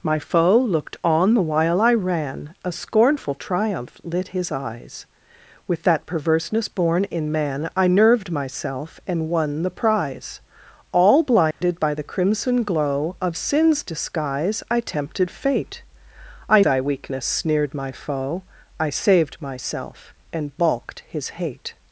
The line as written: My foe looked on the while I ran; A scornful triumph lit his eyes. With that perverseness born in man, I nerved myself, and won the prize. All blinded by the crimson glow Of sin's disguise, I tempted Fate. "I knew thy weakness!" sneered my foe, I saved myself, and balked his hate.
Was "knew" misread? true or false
true